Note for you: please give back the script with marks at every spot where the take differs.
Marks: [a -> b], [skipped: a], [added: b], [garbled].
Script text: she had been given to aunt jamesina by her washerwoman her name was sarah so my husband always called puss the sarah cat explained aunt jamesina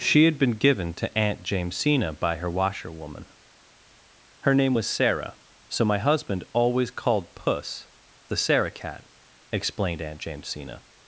she had been given to aunt jamesina by her washerwoman her name was sarah so my husband always called puss the sarah cat explained aunt jamesina